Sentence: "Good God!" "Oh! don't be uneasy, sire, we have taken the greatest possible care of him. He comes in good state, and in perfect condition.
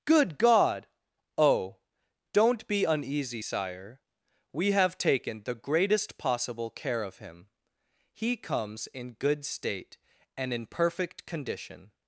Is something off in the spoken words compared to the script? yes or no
no